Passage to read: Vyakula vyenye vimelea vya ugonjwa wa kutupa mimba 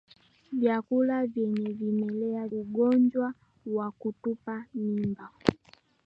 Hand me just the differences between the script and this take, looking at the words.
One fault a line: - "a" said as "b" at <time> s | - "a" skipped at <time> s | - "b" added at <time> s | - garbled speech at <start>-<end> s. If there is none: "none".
- "vya" skipped at 2.5 s